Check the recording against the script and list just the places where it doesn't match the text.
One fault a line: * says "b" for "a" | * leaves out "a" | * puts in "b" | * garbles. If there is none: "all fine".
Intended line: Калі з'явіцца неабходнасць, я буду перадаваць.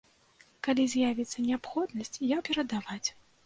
* leaves out "буду"